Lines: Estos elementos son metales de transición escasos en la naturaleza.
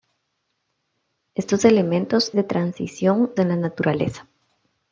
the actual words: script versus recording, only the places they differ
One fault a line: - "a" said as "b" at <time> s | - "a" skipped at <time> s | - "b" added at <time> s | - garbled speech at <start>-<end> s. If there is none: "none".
- "son metales" skipped at 2.3 s
- "escasos" skipped at 3.3 s